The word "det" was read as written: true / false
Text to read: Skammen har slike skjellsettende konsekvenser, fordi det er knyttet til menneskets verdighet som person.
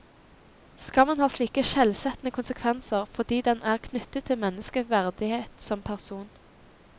false